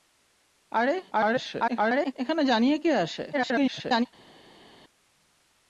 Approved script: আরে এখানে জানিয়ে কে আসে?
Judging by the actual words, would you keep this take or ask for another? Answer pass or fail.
fail